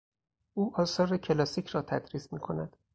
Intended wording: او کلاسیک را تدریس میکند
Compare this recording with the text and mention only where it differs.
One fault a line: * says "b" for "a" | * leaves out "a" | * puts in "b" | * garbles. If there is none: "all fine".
* puts in "آثار"